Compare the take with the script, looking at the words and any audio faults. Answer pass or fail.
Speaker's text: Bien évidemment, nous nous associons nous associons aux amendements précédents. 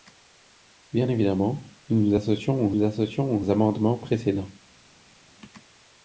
pass